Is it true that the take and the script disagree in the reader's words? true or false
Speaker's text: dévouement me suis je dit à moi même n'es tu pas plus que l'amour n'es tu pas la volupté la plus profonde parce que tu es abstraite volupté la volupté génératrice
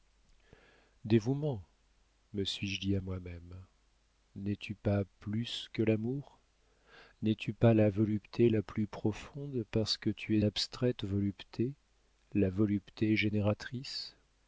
false